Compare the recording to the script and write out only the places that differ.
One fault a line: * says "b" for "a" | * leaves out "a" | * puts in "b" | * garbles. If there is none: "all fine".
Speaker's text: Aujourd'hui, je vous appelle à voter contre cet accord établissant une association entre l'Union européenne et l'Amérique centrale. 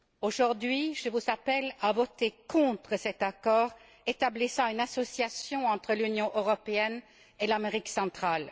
all fine